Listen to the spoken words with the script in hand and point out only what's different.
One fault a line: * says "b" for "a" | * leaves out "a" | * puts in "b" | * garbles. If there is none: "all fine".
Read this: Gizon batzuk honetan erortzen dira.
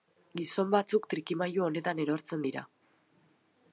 * puts in "trikimailu"